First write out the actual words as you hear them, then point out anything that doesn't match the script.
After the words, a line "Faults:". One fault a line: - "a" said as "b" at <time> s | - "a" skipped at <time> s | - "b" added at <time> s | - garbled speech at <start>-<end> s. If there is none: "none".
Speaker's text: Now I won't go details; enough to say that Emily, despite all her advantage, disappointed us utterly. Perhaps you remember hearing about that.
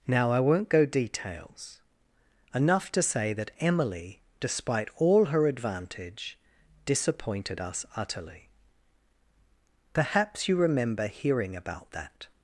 Now I won't go details; enough to say that Emily, despite all her advantage, disappointed us utterly. Perhaps you remember hearing about that.
Faults:
none